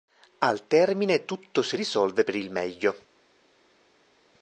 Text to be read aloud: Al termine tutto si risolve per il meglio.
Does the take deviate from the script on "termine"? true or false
false